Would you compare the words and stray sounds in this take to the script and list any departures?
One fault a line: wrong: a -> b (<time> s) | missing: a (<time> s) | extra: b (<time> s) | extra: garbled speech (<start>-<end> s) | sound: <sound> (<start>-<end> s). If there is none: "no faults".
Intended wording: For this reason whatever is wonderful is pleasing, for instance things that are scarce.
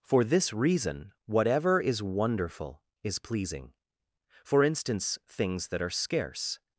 no faults